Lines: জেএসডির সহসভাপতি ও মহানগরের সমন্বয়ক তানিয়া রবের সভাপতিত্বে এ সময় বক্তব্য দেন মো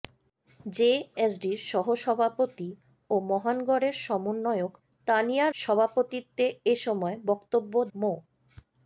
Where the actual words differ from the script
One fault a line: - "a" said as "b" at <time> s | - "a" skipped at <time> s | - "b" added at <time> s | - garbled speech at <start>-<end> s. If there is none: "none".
- "রবের" skipped at 5.5 s
- "দেন" skipped at 7.7 s